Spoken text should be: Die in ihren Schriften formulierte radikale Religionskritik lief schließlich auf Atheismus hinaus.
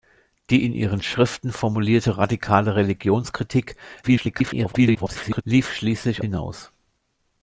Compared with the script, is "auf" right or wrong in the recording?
wrong